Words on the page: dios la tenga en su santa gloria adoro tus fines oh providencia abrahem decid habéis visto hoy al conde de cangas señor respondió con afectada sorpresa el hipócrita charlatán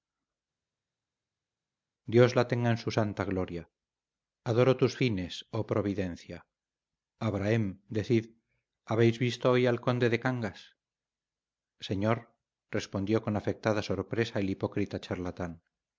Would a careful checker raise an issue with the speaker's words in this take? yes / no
no